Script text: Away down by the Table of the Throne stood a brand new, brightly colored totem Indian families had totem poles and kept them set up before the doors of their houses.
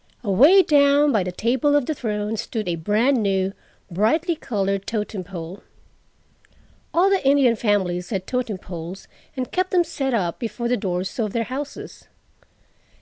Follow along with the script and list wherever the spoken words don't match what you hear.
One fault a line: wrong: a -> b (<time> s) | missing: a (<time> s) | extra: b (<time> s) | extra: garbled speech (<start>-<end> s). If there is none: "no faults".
extra: pole All the (5.3 s)